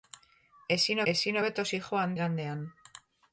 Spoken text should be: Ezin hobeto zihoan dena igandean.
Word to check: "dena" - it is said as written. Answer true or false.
false